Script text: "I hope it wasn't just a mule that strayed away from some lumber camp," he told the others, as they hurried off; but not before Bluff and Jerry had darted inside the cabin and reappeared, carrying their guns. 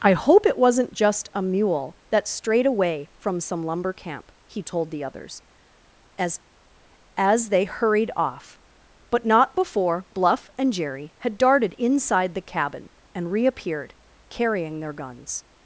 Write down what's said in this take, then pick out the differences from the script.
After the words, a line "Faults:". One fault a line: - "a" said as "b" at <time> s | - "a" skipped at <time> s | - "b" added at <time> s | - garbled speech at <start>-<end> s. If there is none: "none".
"I hope it wasn't just a mule that strayed away from some lumber camp," he told the others, as as they hurried off; but not before Bluff and Jerry had darted inside the cabin and reappeared, carrying their guns.
Faults:
- "as" added at 7.2 s